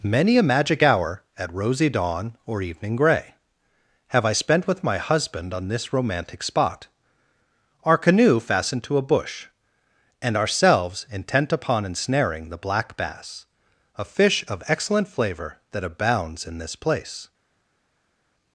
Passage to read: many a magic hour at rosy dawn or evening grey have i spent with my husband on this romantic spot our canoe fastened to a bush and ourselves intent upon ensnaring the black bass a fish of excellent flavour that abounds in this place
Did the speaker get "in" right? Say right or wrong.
right